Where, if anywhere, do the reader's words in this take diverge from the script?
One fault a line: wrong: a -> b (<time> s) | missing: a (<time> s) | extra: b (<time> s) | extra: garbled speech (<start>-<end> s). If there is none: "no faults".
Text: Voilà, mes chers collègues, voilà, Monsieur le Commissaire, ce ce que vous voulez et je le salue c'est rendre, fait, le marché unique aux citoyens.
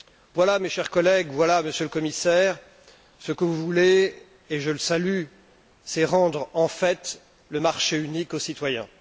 missing: ce (3.3 s)
extra: en (6.5 s)